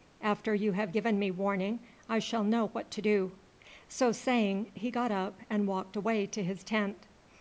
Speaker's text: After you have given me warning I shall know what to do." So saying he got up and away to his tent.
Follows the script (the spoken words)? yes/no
no